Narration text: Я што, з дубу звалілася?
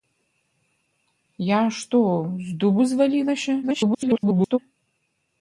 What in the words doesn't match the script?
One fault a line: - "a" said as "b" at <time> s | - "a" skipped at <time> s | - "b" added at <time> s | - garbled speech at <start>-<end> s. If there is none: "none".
- garbled speech at 3.6-4.6 s